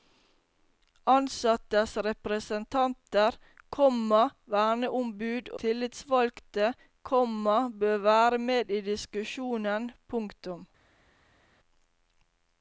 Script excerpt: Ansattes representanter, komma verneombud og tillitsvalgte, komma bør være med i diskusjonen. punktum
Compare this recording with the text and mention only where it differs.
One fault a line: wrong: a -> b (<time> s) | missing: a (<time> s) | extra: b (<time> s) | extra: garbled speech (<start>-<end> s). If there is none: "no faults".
missing: og (5.5 s)